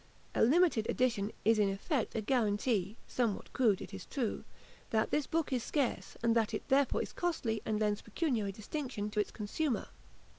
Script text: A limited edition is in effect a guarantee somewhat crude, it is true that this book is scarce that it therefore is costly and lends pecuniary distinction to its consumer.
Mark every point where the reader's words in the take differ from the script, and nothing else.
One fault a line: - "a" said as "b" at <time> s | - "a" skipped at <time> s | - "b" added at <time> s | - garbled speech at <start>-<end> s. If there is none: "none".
- "and" added at 6.2 s